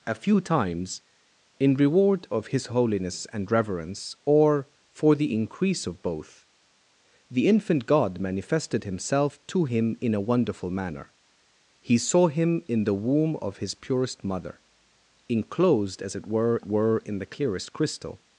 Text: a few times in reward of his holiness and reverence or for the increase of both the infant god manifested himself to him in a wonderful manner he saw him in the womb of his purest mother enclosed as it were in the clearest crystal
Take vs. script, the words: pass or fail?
fail